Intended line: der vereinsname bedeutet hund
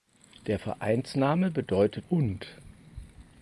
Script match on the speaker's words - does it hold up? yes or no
yes